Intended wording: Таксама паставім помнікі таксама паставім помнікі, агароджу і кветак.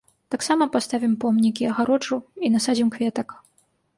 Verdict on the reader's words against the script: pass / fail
fail